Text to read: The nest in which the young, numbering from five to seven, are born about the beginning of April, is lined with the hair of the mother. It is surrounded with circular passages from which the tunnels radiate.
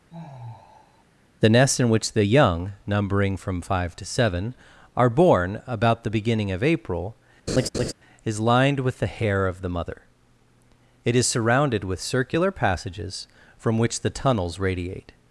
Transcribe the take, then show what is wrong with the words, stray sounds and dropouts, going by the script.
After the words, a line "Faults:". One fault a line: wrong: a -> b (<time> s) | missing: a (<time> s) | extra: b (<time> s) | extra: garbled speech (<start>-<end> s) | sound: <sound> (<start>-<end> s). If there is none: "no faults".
The nest in which the young, numbering from five to seven, are born about the beginning of April, is lined with the hair of the mother. It is surrounded with circular passages from which the tunnels radiate.
Faults:
sound: sigh (0.1-1.0 s)
sound: laugh (7.5-7.9 s)